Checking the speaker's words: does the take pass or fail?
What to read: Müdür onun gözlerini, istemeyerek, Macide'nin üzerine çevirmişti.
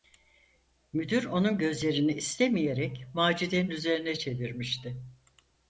pass